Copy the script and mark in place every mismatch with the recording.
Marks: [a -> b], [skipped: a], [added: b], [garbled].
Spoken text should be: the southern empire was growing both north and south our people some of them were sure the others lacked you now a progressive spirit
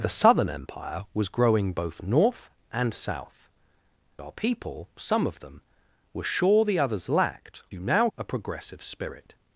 the southern empire was growing both north and south our people some of them were sure the others lacked you now a progressive spirit